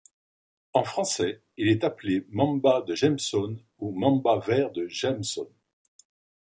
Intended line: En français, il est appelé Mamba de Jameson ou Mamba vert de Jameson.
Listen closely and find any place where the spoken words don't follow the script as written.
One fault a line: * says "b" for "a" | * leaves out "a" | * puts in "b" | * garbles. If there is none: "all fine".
all fine